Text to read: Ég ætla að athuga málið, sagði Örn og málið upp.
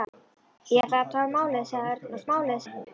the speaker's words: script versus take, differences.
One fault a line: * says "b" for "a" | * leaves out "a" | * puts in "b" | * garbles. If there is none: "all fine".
all fine